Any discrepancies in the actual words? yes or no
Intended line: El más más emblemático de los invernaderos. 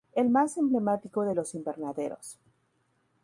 yes